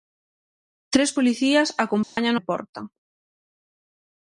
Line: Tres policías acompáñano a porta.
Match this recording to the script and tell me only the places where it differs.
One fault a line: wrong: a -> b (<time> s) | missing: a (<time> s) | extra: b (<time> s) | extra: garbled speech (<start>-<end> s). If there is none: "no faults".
no faults